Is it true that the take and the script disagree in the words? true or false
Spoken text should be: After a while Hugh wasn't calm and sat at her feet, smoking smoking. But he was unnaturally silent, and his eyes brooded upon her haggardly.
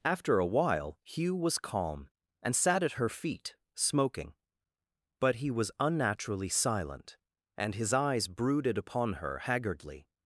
true